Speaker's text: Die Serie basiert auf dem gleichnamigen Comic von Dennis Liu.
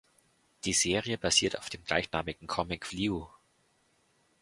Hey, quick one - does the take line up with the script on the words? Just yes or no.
no